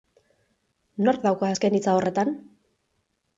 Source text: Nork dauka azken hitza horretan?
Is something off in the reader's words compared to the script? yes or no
no